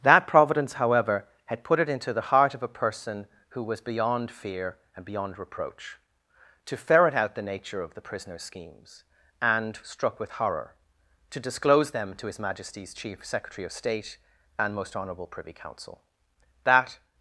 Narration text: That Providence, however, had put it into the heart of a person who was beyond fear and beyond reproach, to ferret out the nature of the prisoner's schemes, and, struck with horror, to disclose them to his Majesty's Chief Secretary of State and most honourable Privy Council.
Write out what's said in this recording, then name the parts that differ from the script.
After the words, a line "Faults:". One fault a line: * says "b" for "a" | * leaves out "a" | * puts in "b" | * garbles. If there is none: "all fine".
That Providence, however, had put it into the heart of a person who was beyond fear and beyond reproach, to ferret out the nature of the prisoner's schemes, and, struck with horror, to disclose them to his Majesty's Chief Secretary of State and most honourable Privy Council. That
Faults:
* puts in "That"